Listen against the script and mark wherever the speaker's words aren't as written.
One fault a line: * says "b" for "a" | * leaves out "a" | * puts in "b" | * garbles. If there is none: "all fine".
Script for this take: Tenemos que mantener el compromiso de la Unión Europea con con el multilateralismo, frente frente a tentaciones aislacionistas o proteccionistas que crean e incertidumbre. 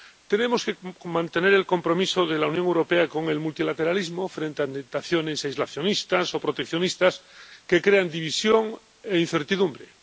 * leaves out "con"
* leaves out "frente"
* puts in "división"